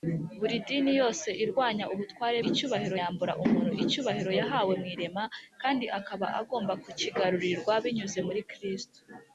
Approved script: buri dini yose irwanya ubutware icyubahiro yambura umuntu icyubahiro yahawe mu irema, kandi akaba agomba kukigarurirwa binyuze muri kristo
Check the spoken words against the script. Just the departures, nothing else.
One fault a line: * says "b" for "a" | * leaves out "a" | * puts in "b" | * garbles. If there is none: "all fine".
all fine